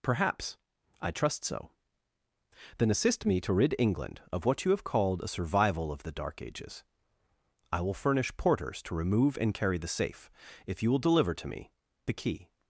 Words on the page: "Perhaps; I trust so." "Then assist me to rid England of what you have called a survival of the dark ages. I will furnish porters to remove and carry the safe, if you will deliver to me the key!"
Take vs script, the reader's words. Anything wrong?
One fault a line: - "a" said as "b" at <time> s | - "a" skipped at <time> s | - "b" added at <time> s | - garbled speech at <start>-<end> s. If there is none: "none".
none